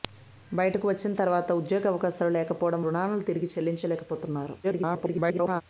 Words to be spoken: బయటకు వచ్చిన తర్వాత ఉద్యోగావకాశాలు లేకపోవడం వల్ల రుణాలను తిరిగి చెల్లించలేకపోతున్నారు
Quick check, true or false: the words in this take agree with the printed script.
false